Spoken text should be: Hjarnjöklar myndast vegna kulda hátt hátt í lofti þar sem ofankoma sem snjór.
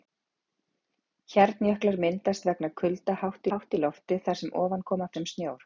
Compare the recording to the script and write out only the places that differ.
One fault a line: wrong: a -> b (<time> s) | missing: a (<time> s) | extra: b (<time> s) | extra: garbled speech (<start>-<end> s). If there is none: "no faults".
no faults